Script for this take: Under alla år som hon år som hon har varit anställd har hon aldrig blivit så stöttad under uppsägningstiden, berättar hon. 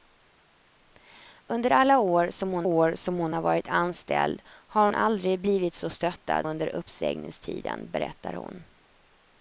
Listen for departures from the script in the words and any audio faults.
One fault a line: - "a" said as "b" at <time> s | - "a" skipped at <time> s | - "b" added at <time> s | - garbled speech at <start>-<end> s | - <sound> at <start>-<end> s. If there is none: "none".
none